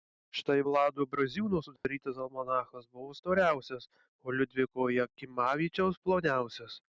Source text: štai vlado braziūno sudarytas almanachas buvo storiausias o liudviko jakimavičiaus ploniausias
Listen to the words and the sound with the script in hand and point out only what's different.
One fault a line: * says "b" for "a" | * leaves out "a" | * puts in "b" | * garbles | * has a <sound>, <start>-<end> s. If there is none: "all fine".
* has a dropout, 1.8-1.8 s